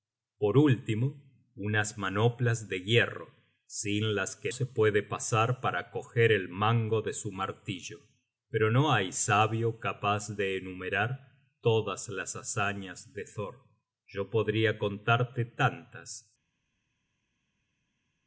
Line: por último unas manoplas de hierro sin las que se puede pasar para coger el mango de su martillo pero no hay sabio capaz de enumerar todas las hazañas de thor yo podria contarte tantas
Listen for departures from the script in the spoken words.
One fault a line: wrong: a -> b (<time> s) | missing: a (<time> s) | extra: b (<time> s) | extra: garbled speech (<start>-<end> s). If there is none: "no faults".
no faults